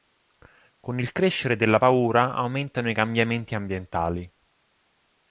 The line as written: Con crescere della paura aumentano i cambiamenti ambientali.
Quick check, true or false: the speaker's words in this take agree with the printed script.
false